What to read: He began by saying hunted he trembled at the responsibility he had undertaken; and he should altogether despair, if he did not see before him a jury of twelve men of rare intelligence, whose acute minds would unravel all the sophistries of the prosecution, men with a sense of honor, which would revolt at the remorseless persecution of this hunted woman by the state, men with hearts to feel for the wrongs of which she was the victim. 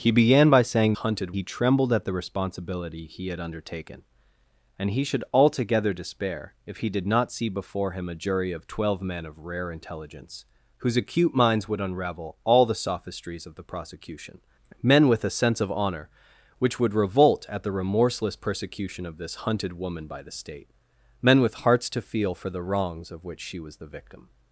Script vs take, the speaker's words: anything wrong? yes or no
no